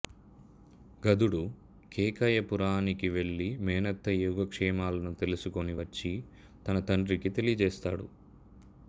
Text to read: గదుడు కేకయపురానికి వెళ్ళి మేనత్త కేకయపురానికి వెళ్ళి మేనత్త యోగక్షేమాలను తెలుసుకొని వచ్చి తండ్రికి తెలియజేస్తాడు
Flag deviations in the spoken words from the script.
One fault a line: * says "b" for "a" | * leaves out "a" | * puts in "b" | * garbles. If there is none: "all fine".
* leaves out "కేకయపురానికి వెళ్ళి మేనత్త"
* puts in "తన"